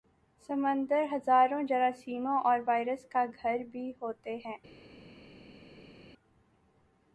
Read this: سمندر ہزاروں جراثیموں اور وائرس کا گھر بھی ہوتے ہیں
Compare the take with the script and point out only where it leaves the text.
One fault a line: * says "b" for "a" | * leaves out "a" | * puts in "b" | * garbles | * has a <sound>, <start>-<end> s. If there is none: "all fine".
all fine